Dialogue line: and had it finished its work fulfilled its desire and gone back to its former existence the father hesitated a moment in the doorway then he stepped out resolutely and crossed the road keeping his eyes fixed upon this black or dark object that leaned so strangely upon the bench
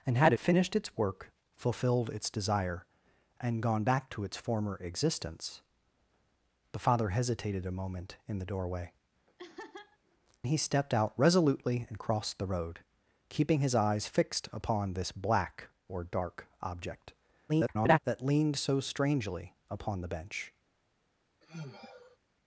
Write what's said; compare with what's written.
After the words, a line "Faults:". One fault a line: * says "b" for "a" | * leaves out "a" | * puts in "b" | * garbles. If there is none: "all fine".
and had finished its work fulfilled its desire and gone back to its former existence the father hesitated a moment in the doorway he stepped out resolutely and crossed the road keeping his eyes fixed upon this black or dark object [garbled] that leaned so strangely upon the bench
Faults:
* leaves out "it"
* leaves out "then"
* garbles